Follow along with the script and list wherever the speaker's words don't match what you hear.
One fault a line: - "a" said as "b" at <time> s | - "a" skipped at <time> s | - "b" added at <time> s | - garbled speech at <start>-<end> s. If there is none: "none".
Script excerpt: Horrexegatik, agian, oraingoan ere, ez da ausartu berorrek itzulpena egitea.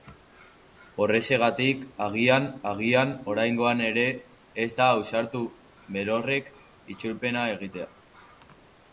- "agian" added at 2.7 s